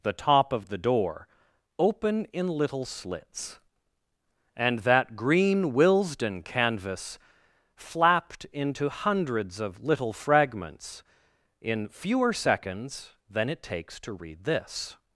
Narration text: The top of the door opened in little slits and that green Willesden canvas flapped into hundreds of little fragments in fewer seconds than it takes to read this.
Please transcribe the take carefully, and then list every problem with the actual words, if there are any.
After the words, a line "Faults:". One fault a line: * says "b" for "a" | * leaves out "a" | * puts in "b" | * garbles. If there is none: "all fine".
The top of the door open in little slits and that green Willesden canvas flapped into hundreds of little fragments in fewer seconds than it takes to read this.
Faults:
* says "open" for "opened"